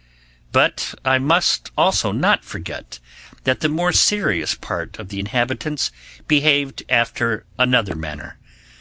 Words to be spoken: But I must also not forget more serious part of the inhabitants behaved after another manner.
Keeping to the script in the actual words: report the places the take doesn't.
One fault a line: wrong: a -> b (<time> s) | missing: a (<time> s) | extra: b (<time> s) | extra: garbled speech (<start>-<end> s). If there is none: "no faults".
extra: that the (3.4 s)